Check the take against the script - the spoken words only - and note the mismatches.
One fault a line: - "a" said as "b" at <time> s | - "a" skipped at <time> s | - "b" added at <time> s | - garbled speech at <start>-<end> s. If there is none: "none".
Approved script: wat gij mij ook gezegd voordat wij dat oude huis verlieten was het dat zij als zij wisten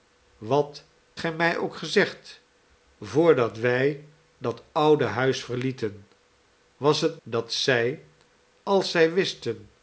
none